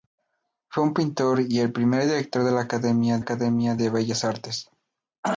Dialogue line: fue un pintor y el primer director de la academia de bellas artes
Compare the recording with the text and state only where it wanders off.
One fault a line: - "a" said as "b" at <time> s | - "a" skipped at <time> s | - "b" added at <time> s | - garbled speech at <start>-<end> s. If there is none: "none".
- "academia" added at 3.2 s